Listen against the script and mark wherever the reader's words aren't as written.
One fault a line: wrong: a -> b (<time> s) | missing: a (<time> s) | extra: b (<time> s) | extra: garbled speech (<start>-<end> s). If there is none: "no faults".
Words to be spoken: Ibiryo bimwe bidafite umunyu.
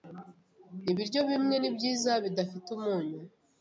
extra: nibyiza (1.6 s)